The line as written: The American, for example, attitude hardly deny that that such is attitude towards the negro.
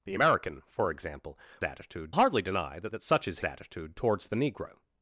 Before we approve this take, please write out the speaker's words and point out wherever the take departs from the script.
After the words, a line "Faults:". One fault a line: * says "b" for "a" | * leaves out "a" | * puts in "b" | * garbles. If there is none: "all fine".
The American, for example, attitude hardly deny that that such is attitude towards the negro.
Faults:
all fine